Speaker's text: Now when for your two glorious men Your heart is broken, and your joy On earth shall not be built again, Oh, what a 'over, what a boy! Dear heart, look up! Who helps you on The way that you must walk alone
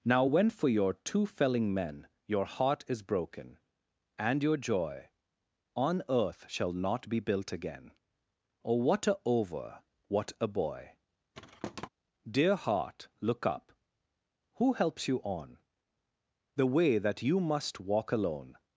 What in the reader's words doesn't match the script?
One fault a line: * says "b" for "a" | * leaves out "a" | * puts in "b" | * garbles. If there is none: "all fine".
* says "felling" for "glorious"